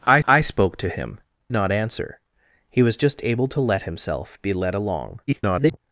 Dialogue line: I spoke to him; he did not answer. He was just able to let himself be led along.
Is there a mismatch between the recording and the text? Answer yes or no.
yes